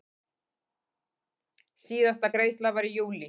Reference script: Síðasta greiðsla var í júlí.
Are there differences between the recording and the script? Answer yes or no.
no